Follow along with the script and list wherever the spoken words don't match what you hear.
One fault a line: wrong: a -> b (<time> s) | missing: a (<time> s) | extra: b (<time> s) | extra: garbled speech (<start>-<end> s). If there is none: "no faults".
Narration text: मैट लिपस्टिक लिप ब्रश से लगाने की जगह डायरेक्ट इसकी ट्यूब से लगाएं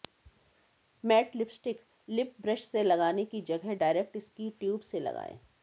no faults